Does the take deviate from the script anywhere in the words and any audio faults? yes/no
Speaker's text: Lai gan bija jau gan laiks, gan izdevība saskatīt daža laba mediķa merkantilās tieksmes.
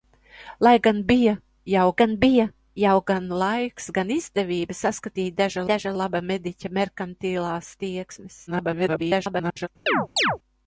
yes